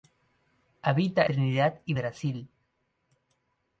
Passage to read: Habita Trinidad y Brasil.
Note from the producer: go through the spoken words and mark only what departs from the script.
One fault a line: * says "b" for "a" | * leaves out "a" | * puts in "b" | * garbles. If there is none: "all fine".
all fine